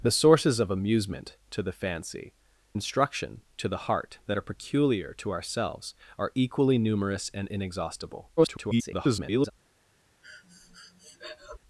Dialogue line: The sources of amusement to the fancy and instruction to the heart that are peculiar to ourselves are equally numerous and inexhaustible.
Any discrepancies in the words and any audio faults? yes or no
yes